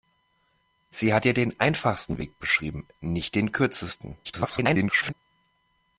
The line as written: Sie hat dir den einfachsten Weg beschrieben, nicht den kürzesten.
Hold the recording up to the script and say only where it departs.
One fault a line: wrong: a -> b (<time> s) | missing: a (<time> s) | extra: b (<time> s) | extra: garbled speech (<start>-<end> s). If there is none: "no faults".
extra: garbled speech (4.2-5.1 s)